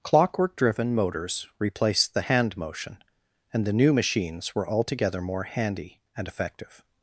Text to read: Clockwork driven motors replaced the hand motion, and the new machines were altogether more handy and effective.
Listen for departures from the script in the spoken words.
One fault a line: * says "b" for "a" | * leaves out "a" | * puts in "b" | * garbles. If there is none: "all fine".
all fine